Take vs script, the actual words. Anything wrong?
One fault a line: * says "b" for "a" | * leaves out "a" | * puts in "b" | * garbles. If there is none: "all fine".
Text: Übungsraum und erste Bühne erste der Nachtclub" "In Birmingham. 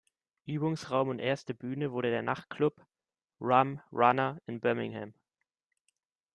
* says "wurde" for "erste"
* puts in "Rum Runner"